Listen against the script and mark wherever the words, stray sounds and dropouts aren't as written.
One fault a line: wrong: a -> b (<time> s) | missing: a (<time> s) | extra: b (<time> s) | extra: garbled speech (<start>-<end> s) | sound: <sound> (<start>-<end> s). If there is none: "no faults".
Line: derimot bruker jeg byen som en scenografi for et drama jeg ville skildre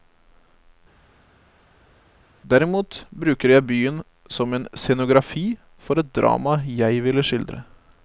no faults